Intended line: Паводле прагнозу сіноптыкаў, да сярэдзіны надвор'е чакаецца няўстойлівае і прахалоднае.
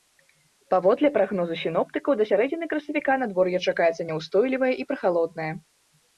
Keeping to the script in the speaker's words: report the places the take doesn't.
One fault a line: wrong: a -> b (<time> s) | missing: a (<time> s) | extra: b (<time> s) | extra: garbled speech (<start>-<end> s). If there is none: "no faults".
extra: красавіка (2.8 s)